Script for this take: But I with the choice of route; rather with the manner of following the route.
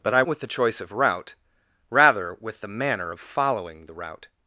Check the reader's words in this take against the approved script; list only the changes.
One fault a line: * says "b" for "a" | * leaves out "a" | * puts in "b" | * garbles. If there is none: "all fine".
all fine